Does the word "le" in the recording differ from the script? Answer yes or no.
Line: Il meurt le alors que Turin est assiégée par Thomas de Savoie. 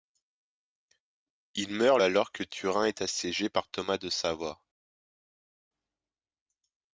yes